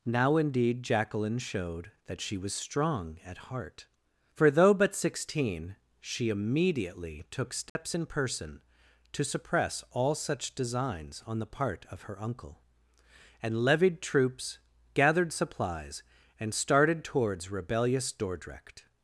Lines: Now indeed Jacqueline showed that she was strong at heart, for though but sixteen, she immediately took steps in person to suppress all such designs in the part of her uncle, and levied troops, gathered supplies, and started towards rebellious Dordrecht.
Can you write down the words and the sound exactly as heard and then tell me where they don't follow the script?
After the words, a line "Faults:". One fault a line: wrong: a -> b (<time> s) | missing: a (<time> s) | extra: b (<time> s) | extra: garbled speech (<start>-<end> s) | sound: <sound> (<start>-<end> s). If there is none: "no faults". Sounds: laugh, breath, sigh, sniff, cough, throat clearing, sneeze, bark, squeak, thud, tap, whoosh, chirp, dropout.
Now indeed Jacqueline showed that she was strong at heart, for though but sixteen, she immediately took steps in person to suppress all such designs on the part of her uncle, and levied troops, gathered supplies, and started towards rebellious Dordrecht.
Faults:
sound: dropout (7.7-7.8 s)
wrong: in -> on (11.3 s)